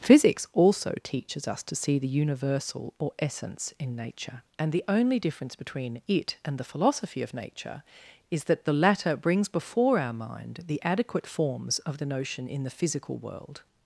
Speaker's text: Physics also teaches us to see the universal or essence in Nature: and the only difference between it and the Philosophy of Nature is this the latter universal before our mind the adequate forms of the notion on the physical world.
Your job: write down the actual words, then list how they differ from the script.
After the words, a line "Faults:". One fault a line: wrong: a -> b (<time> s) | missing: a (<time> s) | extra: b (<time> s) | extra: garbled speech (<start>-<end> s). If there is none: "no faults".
Physics also teaches us to see the universal or essence in Nature: and the only difference between it and the Philosophy of Nature is that the latter brings before our mind the adequate forms of the notion in the physical world.
Faults:
wrong: this -> that (8.4 s)
wrong: universal -> brings (9.2 s)
wrong: on -> in (12.5 s)